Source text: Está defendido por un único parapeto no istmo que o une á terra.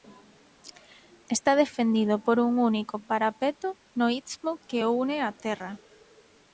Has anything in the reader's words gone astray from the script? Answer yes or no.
no